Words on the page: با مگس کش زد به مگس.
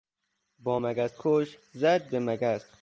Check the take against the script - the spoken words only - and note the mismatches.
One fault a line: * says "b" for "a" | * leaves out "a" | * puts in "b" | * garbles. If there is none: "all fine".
all fine